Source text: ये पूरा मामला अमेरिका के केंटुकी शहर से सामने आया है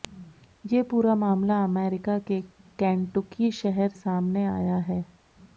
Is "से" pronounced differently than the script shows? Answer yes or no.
yes